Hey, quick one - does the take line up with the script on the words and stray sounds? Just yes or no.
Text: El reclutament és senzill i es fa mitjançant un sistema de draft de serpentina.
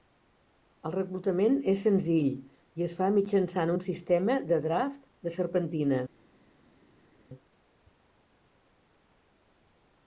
yes